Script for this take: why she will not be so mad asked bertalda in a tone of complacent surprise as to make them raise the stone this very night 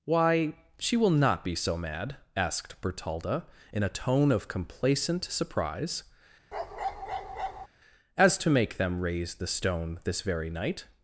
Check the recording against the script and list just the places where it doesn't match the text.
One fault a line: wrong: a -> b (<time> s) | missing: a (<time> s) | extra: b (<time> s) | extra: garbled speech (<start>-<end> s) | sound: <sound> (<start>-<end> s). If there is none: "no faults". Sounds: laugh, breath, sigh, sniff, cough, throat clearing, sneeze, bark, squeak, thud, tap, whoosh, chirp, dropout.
sound: bark (6.5-7.7 s)